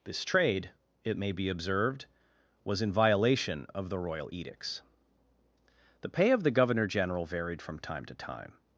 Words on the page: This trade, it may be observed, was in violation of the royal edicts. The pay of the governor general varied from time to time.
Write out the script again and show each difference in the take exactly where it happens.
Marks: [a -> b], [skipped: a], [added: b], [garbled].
This trade, it may be observed, was in violation of the royal edicts. The pay of the governor general varied from time to time.